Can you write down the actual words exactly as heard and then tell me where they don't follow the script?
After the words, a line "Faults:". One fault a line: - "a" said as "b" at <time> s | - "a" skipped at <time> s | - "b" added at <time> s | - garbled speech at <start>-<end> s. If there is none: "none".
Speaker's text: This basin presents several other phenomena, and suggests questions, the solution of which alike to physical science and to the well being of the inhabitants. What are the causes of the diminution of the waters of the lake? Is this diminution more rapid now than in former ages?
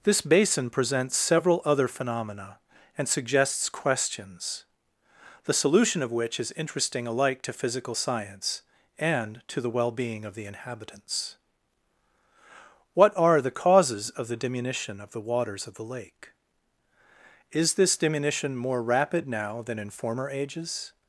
This basin presents several other phenomena, and suggests questions, the solution of which is interesting alike to physical science and to the well being of the inhabitants. What are the causes of the diminution of the waters of the lake? Is this diminution more rapid now than in former ages?
Faults:
- "is interesting" added at 6.4 s